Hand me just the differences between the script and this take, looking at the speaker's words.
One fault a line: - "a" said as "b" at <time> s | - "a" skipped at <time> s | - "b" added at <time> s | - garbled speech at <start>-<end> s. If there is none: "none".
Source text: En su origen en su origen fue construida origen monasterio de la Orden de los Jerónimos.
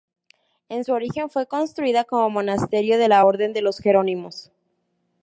- "en su origen" skipped at 1.3 s
- "origen" said as "como" at 2.0 s